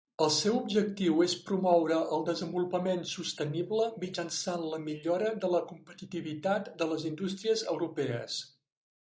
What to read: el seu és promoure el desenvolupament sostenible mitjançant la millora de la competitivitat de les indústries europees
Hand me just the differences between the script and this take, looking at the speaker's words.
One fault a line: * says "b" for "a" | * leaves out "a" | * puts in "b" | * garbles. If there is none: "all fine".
* puts in "objectiu"